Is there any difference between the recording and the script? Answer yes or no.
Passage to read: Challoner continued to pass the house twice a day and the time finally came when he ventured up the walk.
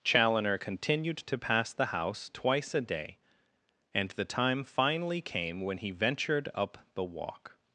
no